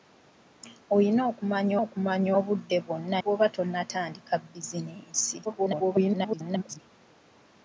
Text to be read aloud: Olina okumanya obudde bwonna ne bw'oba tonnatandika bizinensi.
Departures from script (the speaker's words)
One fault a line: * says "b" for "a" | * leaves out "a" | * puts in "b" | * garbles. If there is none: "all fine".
* puts in "okumanya"
* leaves out "ne"
* garbles